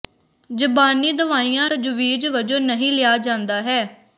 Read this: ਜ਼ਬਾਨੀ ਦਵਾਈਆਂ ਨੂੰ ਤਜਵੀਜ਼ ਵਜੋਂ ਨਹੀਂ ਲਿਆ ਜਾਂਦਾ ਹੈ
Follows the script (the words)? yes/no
no